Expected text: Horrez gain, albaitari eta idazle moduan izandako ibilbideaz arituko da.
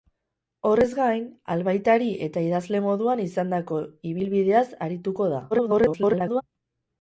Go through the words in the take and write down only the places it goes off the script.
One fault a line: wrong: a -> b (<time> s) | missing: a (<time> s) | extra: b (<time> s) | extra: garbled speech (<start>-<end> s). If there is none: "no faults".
extra: garbled speech (5.5-6.4 s)